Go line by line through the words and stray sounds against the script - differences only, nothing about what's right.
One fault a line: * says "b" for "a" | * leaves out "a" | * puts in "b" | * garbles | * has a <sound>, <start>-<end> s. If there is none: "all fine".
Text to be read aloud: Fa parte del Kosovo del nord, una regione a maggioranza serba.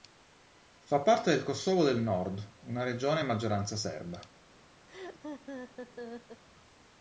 * has a laugh, 4.9-6.4 s